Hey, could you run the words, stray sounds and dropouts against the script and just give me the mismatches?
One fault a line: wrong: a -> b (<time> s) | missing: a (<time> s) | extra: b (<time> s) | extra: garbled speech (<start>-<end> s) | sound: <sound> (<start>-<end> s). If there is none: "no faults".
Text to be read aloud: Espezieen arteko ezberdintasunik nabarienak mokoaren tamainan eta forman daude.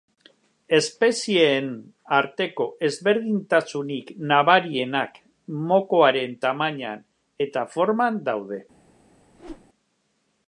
sound: whoosh (9.3-9.7 s)